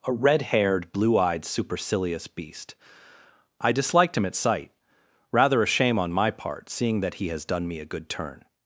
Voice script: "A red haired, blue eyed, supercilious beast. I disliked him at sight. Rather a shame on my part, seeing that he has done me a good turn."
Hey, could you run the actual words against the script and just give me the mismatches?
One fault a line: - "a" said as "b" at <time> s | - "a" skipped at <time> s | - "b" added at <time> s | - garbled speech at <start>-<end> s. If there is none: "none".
none